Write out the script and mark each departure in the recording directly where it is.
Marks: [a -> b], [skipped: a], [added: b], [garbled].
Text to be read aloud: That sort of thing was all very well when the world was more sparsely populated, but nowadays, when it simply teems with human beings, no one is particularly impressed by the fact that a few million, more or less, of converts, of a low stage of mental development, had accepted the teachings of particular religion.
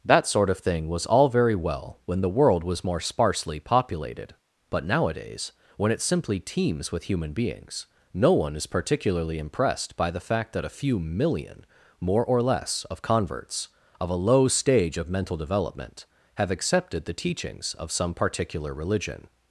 That sort of thing was all very well when the world was more sparsely populated, but nowadays, when it simply teems with human beings, no one is particularly impressed by the fact that a few million, more or less, of converts, of a low stage of mental development, [had -> have] accepted the teachings of [added: some] particular religion.